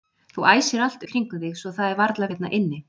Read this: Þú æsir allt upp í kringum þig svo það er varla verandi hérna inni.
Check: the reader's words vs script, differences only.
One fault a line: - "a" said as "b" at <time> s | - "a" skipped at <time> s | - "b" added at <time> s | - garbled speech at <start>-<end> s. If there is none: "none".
- "upp" skipped at 1.1 s
- "verandi" skipped at 2.3 s